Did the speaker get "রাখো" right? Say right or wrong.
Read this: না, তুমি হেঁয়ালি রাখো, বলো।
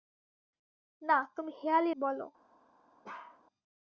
wrong